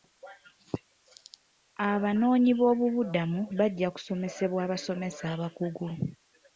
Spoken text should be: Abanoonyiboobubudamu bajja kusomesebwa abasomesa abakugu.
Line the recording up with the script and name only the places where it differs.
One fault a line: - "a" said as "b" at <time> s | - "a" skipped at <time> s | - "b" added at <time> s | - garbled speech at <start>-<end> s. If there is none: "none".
none